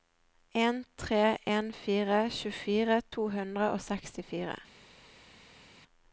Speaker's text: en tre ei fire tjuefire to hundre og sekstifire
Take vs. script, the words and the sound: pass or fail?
fail